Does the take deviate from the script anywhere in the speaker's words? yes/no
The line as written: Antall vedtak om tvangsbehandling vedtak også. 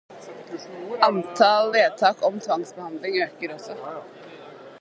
yes